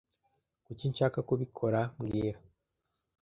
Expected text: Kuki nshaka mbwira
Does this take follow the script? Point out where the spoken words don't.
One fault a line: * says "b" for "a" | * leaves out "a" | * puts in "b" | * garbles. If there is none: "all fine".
* puts in "kubikora"